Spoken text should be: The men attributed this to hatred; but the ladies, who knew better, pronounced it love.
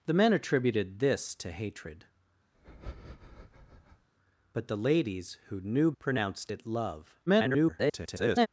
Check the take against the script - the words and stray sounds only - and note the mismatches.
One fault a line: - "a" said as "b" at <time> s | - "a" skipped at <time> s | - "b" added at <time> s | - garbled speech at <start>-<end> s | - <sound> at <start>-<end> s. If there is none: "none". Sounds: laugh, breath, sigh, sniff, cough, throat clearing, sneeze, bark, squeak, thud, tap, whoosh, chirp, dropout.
- breath at 2.5-4.1 s
- "better" skipped at 5.9 s
- garbled speech at 7.3-8.5 s